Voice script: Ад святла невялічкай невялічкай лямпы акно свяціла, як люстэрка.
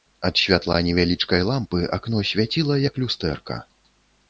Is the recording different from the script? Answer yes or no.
yes